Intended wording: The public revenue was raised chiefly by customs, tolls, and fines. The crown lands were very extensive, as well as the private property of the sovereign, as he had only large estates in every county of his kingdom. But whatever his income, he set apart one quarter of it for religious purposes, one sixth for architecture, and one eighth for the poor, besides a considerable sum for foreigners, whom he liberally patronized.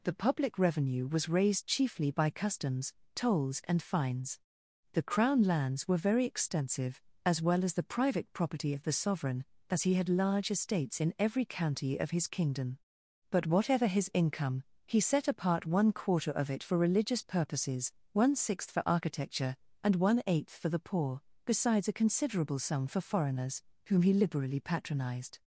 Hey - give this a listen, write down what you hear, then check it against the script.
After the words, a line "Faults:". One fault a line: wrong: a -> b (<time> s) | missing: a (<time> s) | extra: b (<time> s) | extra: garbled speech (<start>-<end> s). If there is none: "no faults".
The public revenue was raised chiefly by customs, tolls, and fines. The crown lands were very extensive, as well as the private property of the sovereign, as he had large estates in every county of his kingdom. But whatever his income, he set apart one quarter of it for religious purposes, one sixth for architecture, and one eighth for the poor, besides a considerable sum for foreigners, whom he liberally patronized.
Faults:
missing: only (10.1 s)